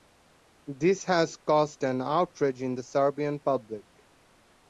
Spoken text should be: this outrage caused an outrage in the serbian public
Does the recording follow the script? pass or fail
fail